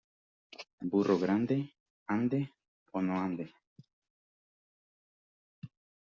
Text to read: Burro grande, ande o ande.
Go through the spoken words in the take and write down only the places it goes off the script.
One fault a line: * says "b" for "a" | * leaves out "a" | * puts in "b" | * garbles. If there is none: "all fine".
* puts in "no"